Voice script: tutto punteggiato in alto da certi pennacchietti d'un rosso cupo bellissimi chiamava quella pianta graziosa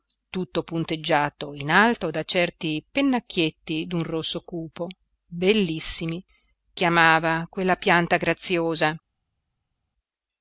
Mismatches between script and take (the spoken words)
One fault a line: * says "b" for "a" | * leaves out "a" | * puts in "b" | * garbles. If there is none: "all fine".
all fine